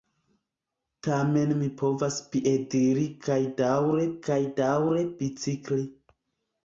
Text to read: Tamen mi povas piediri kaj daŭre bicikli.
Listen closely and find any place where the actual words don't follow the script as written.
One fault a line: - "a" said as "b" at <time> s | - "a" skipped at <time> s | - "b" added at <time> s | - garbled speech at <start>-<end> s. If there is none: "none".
- "kaj daŭre" added at 4.3 s